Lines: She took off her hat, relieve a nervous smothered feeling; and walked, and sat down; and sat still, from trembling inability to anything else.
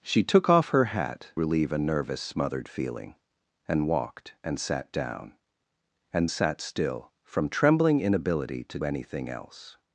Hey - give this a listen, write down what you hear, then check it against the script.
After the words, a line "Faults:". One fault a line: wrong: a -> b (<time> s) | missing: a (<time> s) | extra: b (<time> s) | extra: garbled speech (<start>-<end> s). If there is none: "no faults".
She took off her hat, relieve a nervous smothered feeling; and walked, and sat down; and sat still, from trembling inability to anything else.
Faults:
no faults